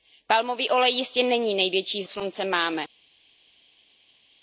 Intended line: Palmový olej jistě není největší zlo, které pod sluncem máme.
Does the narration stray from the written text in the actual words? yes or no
yes